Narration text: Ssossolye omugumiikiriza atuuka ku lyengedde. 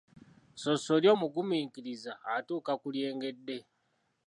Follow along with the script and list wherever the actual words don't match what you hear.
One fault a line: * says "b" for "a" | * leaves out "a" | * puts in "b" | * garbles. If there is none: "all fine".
all fine